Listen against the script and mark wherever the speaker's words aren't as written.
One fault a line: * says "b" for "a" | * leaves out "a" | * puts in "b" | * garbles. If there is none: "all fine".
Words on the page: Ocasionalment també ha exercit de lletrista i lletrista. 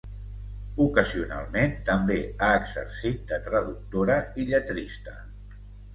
* says "traductora" for "lletrista"